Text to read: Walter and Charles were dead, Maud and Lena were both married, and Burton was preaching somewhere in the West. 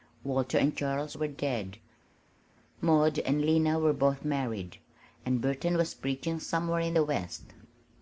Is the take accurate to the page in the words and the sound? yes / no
yes